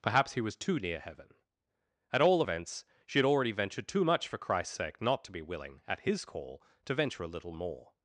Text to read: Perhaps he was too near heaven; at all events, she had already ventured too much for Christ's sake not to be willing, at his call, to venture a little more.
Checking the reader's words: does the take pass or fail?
pass